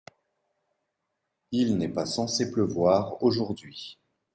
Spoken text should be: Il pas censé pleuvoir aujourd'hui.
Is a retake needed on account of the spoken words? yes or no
yes